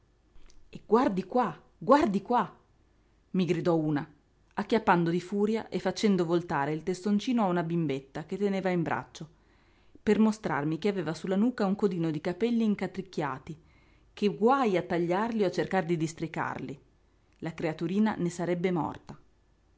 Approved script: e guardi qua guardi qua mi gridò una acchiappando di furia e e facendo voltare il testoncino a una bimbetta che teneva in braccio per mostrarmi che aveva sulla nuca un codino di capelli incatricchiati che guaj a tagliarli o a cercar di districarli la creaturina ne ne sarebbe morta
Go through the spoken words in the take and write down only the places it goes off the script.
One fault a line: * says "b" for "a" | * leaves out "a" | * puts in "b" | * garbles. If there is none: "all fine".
* leaves out "e"
* leaves out "ne"